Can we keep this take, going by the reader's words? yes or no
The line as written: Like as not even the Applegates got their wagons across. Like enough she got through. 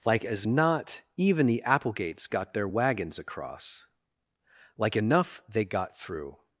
no